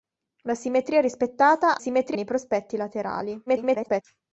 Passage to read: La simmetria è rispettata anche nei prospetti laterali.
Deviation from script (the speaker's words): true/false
true